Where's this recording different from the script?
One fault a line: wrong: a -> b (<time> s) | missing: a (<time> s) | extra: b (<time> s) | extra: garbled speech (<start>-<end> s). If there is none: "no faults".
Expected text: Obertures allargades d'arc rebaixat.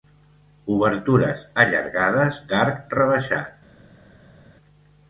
no faults